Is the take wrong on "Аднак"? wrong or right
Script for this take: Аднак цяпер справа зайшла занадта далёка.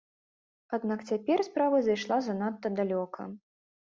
right